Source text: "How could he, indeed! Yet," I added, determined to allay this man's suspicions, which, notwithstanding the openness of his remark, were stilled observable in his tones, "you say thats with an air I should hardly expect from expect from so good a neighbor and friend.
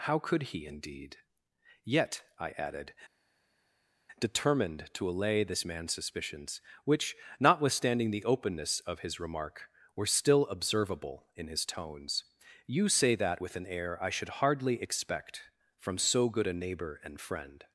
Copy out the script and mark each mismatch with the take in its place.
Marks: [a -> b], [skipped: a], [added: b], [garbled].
"How could he, indeed! Yet," I added, determined to allay this man's suspicions, which, notwithstanding the openness of his remark, were [stilled -> still] observable in his tones, "you say [thats -> that] with an air I should hardly expect from [skipped: expect from] so good a neighbor and friend.